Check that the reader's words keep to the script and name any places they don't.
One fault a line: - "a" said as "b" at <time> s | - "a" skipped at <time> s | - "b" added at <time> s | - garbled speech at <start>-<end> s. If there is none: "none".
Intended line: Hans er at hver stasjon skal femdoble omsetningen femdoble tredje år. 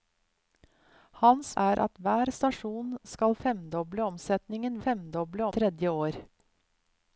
none